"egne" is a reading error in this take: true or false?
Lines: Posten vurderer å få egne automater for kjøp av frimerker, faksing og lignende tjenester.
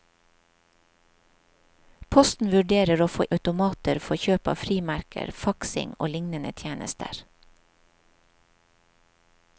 true